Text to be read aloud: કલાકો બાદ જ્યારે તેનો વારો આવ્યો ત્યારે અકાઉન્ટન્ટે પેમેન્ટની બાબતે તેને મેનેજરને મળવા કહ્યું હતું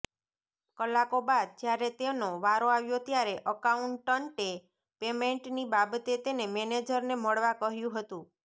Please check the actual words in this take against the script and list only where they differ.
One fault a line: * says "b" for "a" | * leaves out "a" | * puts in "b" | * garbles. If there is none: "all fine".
all fine